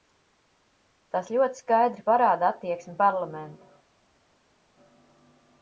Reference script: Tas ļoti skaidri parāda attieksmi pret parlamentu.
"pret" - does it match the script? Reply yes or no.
no